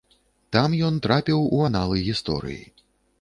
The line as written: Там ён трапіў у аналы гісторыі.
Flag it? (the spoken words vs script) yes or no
no